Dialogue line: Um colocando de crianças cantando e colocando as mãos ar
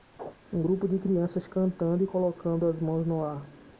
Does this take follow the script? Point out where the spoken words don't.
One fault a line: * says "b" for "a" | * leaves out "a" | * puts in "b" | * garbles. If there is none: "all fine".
* says "grupo" for "colocando"
* puts in "no"